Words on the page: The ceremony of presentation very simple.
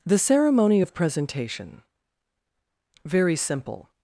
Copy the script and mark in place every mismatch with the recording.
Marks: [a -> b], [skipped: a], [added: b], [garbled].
The ceremony of presentation very simple.